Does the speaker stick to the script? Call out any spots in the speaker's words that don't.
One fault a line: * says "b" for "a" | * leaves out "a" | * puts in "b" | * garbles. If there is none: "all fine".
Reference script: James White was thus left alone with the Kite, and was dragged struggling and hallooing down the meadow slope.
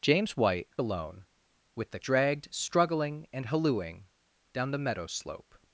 * leaves out "was thus left"
* leaves out "Kite and was"